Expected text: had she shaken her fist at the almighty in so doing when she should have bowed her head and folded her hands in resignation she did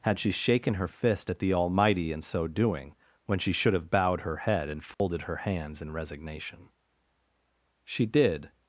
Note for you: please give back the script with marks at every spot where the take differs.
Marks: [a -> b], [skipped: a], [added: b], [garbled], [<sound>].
had she shaken her fist at the almighty in so doing when she should have bowed her head and folded [dropout] her hands in resignation she did